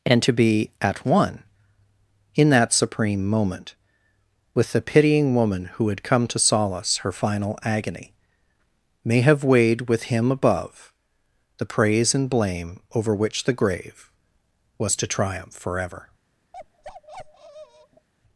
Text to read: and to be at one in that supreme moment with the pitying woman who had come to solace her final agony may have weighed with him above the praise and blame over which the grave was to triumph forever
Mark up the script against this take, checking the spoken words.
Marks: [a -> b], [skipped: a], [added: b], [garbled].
and to be at one in that supreme moment with the pitying woman who had come to solace her final agony may have weighed with him above the praise and blame over which the grave was to triumph forever